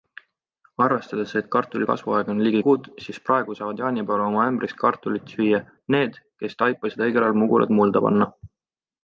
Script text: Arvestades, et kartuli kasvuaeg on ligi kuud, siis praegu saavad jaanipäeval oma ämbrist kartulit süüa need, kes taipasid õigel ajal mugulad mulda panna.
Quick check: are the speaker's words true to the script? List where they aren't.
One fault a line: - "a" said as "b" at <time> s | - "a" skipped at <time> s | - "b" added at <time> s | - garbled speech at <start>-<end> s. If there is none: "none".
none